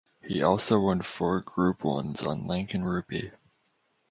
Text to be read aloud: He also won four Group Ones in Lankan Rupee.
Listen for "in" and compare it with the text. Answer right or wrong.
wrong